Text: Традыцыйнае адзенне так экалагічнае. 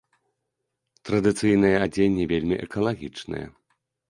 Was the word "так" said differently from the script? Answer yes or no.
yes